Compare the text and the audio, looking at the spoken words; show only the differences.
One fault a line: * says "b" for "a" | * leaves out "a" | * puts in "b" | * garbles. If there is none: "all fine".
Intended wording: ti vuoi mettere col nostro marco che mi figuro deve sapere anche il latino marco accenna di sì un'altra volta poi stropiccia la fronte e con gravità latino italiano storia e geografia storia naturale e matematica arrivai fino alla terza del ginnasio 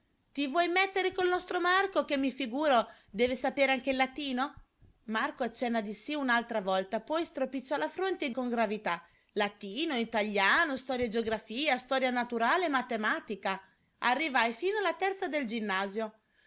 all fine